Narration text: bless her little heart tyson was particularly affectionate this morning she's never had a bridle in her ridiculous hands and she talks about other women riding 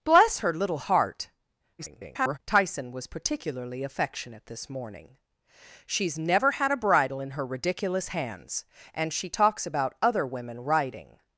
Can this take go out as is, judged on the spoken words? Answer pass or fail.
fail